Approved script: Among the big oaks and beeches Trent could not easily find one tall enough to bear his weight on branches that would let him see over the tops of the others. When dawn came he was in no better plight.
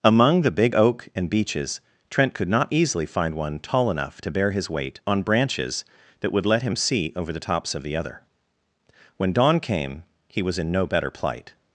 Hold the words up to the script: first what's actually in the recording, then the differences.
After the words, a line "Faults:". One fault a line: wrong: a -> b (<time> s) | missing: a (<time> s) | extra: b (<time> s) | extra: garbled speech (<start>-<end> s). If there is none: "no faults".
Among the big oak and beeches Trent could not easily find one tall enough to bear his weight on branches that would let him see over the tops of the other. When dawn came he was in no better plight.
Faults:
wrong: oaks -> oak (0.7 s)
wrong: others -> other (8.0 s)